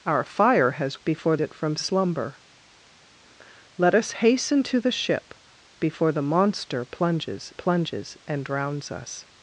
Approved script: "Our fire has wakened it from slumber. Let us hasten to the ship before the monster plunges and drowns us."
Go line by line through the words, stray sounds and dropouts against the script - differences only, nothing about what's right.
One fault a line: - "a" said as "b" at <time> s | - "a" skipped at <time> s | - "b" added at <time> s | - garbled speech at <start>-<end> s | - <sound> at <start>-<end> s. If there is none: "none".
- "wakened" said as "before" at 1.0 s
- "plunges" added at 7.5 s